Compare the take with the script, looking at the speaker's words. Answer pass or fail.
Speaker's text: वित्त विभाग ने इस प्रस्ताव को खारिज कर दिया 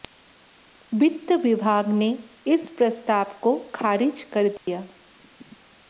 pass